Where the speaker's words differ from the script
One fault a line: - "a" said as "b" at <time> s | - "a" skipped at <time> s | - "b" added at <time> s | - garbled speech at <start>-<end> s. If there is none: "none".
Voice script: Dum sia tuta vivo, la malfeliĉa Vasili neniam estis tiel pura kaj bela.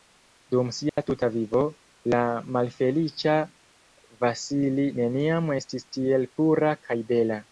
none